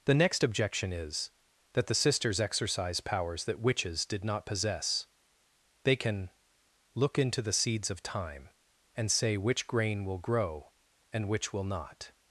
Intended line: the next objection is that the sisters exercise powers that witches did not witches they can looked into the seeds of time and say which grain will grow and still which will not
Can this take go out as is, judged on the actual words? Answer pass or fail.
fail